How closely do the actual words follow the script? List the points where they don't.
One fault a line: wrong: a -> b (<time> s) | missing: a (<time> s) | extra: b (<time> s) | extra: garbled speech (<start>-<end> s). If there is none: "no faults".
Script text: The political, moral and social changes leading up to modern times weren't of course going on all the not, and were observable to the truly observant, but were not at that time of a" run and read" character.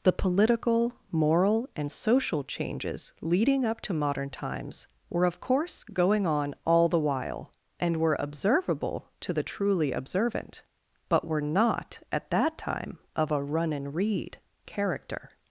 wrong: weren't -> were (5.1 s)
wrong: not -> while (7.0 s)